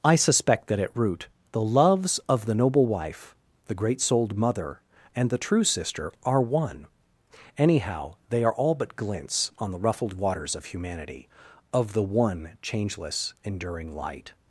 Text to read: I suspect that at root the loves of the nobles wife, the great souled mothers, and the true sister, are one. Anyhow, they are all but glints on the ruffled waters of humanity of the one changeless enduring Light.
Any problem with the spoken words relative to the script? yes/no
yes